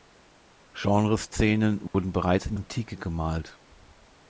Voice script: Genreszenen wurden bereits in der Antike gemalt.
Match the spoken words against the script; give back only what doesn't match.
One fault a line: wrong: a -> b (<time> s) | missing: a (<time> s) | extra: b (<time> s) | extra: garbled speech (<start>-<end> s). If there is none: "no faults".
missing: der (2.6 s)